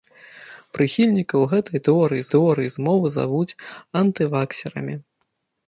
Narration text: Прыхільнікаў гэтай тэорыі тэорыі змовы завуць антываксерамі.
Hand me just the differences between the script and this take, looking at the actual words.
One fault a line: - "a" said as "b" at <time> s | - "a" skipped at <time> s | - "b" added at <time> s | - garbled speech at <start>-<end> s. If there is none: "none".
none